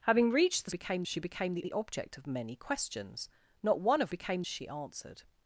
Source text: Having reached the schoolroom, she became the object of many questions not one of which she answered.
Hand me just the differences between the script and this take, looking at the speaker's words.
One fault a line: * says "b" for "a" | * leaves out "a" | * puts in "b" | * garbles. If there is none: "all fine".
* says "became" for "schoolroom"
* puts in "the"
* says "became" for "which"